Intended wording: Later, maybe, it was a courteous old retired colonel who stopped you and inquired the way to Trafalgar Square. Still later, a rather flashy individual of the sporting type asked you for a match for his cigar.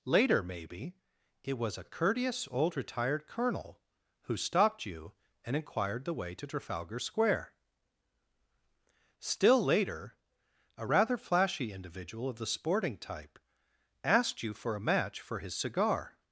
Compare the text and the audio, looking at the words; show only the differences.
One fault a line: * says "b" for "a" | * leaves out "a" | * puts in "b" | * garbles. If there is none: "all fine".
all fine